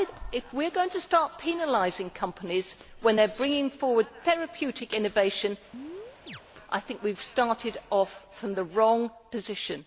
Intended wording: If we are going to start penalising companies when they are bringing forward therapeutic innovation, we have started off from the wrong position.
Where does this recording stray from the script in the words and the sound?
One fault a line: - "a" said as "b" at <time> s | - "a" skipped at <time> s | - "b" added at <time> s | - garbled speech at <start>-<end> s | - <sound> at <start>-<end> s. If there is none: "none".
- chirp at 5.7-6.4 s
- "I think" added at 6.7 s